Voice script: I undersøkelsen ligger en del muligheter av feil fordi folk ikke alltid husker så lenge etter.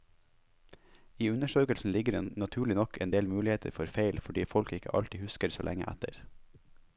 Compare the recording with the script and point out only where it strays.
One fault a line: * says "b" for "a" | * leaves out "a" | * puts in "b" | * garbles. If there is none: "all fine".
* puts in "det naturlig nok"
* says "for" for "av"